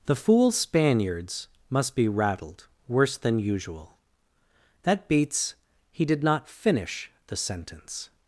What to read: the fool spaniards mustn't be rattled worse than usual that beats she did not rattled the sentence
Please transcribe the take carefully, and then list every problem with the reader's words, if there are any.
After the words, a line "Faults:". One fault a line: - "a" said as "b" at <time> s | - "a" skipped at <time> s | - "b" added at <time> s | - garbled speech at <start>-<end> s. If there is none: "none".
the fool spaniards must be rattled worse than usual that beats he did not finish the sentence
Faults:
- "mustn't" said as "must" at 1.7 s
- "she" said as "he" at 5.9 s
- "rattled" said as "finish" at 6.5 s